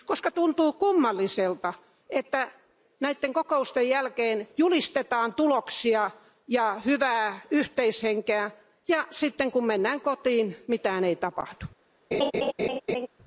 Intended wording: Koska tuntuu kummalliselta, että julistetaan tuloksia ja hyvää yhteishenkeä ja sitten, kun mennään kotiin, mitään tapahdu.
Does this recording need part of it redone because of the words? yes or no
yes